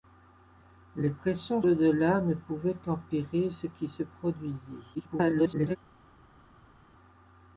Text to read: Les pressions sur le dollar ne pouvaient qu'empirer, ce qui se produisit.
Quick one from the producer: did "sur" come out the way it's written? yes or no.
no